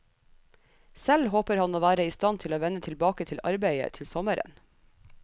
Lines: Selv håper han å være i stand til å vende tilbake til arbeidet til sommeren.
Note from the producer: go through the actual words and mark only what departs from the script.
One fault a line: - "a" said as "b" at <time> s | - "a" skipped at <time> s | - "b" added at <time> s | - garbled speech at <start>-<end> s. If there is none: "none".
none